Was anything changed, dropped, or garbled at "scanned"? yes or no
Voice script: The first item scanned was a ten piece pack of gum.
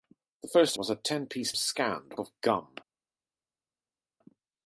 yes